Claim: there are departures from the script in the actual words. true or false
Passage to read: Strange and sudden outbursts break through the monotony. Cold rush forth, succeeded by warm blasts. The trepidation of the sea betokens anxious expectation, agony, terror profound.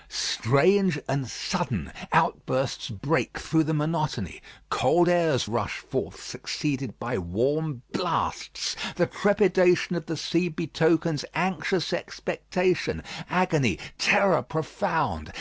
true